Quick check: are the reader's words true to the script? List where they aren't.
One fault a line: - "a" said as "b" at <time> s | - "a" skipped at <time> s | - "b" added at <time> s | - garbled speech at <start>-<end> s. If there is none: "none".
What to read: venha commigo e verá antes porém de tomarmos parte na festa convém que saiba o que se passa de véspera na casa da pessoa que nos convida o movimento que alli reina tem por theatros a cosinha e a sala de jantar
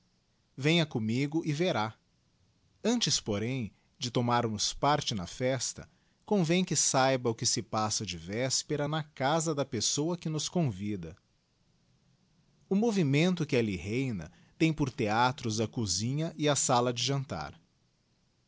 none